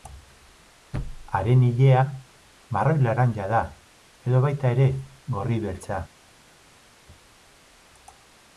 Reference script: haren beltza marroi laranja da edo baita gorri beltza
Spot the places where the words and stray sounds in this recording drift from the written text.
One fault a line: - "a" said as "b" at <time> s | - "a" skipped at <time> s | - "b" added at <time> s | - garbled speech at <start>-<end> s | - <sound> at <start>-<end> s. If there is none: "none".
- "beltza" said as "ilea" at 1.6 s
- "ere" added at 4.8 s